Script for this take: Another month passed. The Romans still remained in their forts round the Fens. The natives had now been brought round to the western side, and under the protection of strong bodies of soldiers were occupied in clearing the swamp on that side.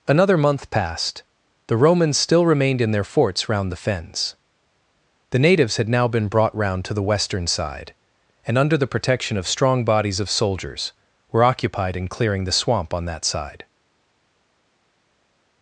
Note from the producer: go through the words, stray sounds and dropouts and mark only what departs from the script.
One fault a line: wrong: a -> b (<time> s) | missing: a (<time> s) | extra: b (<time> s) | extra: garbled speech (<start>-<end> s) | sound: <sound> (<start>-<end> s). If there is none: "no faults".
no faults